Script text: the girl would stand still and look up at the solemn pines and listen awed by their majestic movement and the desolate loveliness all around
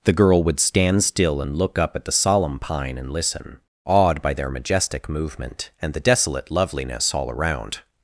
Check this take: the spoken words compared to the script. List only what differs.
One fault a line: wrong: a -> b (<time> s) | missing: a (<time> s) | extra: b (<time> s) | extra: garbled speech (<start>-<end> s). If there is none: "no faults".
wrong: pines -> pine (2.6 s)